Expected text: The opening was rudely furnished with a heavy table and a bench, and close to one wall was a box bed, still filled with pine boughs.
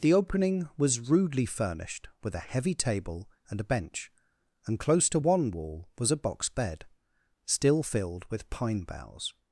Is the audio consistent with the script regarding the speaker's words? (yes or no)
yes